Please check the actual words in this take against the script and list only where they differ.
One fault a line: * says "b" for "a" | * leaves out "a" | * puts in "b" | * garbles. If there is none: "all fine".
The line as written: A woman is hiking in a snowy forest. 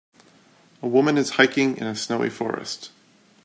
all fine